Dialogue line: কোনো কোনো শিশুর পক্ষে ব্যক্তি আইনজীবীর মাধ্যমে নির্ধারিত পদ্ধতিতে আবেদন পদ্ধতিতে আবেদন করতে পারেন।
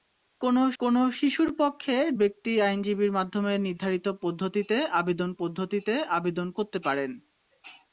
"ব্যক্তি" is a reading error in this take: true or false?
false